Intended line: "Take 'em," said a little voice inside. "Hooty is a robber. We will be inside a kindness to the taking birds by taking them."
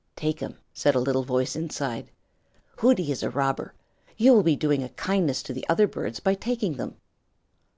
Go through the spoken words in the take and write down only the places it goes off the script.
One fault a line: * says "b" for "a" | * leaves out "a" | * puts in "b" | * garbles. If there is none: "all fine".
* says "You" for "We"
* says "doing" for "inside"
* says "other" for "taking"